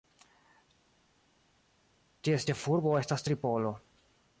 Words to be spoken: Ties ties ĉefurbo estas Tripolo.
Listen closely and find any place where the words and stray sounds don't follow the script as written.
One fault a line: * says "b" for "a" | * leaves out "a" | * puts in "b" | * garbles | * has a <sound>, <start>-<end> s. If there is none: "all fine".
* leaves out "ties"